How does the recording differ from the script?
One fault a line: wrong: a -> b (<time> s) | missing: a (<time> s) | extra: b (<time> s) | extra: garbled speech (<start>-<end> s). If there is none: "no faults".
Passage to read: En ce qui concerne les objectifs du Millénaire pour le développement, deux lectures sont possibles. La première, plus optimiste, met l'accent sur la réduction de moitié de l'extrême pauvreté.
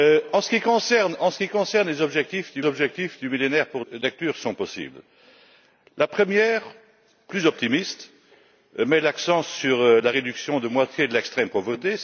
extra: objectifs du (2.6 s)
missing: le développement deux (3.8 s)